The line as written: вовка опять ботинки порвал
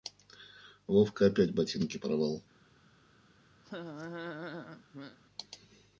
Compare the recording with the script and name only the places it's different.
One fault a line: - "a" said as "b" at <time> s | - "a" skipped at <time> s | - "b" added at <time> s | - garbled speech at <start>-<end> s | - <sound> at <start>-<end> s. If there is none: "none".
- laugh at 3.6-5.2 s